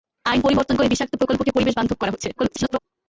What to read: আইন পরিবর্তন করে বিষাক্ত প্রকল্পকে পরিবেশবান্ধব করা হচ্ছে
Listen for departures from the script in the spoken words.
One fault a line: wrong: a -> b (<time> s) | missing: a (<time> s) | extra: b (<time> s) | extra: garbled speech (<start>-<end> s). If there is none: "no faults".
extra: garbled speech (2.4-2.8 s)